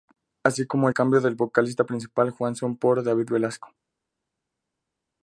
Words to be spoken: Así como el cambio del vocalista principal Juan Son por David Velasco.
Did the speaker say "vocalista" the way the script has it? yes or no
yes